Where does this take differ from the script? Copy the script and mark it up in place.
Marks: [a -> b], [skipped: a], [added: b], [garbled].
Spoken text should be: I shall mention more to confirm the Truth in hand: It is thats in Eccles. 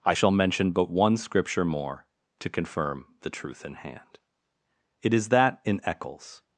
I shall mention [added: but one Scripture] more to confirm the Truth in hand: It is [thats -> that] in Eccles.